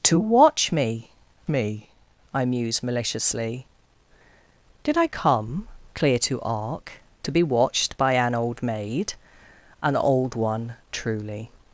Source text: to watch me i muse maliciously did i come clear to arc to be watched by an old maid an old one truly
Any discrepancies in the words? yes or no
yes